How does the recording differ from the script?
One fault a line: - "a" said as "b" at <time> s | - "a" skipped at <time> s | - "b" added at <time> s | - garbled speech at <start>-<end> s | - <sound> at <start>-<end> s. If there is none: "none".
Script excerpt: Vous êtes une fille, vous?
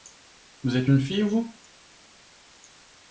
none